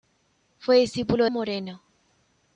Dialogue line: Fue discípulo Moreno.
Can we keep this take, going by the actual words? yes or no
yes